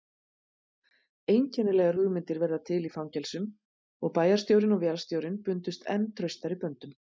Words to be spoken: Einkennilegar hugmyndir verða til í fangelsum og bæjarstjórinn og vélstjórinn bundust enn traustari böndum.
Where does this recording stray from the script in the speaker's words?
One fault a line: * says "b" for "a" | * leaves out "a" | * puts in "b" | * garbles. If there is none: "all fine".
all fine